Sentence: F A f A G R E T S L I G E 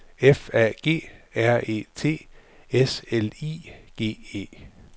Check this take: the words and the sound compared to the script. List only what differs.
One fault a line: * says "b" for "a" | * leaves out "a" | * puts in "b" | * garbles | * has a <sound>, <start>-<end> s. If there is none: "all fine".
* leaves out "f A"